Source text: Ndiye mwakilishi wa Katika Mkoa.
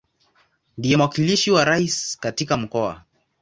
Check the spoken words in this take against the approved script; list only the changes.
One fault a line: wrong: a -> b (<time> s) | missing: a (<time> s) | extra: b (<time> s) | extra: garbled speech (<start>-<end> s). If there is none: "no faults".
extra: Rais (1.6 s)